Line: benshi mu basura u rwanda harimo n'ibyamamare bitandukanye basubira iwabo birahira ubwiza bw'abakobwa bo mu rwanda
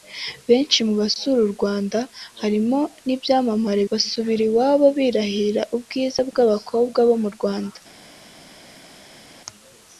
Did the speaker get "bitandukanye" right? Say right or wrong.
wrong